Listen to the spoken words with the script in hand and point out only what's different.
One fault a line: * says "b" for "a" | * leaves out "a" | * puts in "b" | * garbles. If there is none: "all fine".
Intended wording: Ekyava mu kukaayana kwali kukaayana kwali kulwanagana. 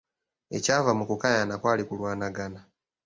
* leaves out "kukaayana kwali"